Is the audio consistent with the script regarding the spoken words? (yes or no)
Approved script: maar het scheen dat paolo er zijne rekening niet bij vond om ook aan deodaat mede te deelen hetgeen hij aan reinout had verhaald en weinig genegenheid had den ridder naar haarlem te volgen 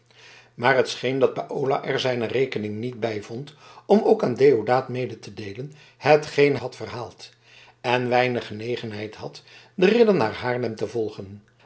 no